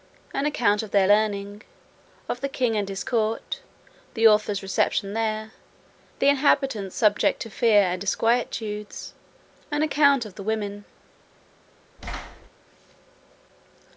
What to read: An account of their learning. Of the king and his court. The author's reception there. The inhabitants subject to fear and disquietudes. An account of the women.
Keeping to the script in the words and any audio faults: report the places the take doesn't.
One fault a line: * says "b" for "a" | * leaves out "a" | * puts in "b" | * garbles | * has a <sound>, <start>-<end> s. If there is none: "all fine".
* has a thud, 12.0-12.5 s